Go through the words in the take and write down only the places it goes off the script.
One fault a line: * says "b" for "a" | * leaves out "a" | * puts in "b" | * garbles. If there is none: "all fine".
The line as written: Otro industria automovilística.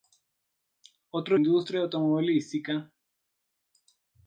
all fine